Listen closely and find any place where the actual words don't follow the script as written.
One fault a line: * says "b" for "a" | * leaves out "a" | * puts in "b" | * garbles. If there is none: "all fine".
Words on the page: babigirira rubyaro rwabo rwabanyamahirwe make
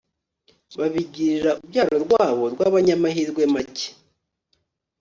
all fine